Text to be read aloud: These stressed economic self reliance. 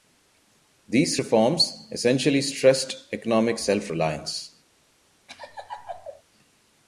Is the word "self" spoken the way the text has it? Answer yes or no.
yes